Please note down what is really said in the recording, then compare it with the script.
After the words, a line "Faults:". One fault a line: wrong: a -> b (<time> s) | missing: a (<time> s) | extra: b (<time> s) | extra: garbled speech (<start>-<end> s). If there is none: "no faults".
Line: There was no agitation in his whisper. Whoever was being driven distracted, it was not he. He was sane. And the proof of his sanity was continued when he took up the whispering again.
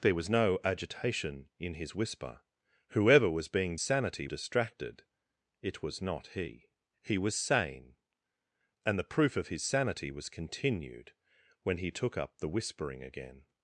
There was no agitation in his whisper. Whoever was being sanity distracted, it was not he. He was sane. And the proof of his sanity was continued when he took up the whispering again.
Faults:
wrong: driven -> sanity (3.8 s)